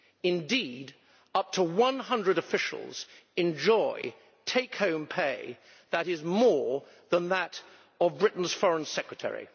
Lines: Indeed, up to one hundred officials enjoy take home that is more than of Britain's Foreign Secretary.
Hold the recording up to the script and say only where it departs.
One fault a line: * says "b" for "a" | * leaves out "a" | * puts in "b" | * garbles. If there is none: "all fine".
* puts in "pay"
* puts in "that"